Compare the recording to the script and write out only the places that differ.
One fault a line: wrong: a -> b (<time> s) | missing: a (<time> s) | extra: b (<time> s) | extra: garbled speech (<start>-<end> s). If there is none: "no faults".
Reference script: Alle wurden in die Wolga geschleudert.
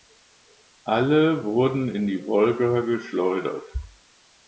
no faults